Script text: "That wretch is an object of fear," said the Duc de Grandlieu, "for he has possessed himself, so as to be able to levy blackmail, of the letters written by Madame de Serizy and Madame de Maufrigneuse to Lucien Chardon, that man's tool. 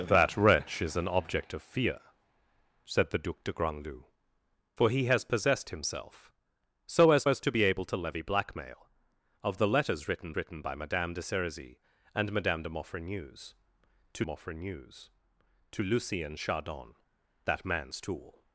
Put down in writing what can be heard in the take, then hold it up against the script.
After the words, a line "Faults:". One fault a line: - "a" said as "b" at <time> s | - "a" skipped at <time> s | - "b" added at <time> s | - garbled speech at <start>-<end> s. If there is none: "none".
"That wretch is an object of fear," said the Duc de Grandlieu, "for he has possessed himself, so as as to be able to levy blackmail, of the letters written written by Madame de Serizy and Madame de Maufrigneuse to Maufrigneuse to Lucien Chardon, that man's tool.
Faults:
- "as" added at 7.3 s
- "written" added at 10.4 s
- "Maufrigneuse to" added at 14.2 s